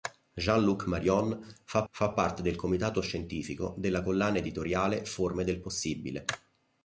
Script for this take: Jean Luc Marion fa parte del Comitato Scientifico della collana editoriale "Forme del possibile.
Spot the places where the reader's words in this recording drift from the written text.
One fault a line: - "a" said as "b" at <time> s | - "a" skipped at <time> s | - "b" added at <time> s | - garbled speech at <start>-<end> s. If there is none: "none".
- "fa" added at 1.9 s